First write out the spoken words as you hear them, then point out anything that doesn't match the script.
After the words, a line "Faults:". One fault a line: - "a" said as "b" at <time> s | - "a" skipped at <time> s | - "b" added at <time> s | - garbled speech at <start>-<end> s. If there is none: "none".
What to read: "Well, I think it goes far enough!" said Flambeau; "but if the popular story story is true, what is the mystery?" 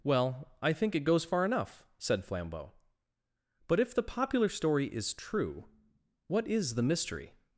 "Well, I think it goes far enough!" said Flambeau; "but if the popular story is true, what is the mystery?"
Faults:
- "story" skipped at 4.9 s